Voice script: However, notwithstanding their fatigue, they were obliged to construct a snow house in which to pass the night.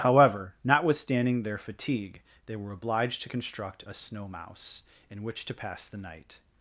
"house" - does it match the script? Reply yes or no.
no